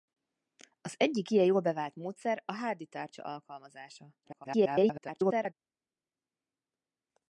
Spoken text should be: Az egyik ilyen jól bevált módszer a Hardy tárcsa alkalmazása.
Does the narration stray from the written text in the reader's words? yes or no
yes